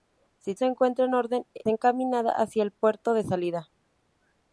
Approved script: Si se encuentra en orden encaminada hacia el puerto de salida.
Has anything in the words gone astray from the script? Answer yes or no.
no